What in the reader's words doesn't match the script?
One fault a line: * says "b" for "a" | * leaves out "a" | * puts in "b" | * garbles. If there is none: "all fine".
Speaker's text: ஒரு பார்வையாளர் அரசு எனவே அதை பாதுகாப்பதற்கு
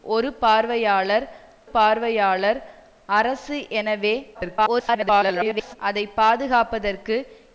* puts in "பார்வையாளர்"
* garbles